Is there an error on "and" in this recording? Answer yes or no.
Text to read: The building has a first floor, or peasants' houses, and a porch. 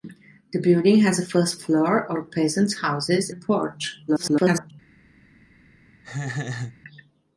yes